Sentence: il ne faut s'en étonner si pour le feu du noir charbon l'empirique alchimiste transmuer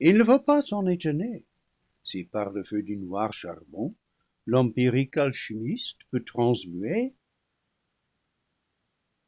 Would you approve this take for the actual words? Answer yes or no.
no